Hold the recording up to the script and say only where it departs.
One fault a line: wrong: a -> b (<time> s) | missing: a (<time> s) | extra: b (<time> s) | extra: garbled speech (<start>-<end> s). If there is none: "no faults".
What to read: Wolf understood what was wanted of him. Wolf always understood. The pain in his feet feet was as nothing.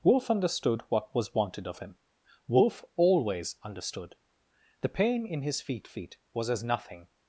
no faults